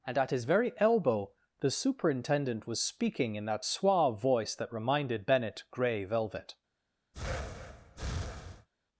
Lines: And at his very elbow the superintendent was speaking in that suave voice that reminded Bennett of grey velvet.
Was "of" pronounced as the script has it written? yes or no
no